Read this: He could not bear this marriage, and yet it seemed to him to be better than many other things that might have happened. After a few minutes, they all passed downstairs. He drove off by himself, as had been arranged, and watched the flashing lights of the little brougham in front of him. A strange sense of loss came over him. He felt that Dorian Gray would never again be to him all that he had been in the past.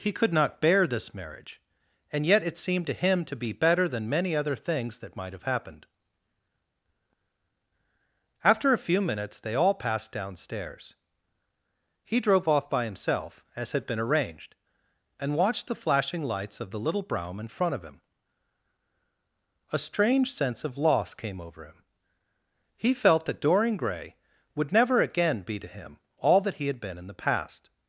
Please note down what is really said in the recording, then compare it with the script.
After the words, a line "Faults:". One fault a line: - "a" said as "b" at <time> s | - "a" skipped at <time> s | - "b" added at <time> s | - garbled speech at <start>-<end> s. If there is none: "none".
He could not bear this marriage, and yet it seemed to him to be better than many other things that might have happened. After a few minutes, they all passed downstairs. He drove off by himself, as had been arranged, and watched the flashing lights of the little brougham in front of him. A strange sense of loss came over him. He felt that Dorian Gray would never again be to him all that he had been in the past.
Faults:
none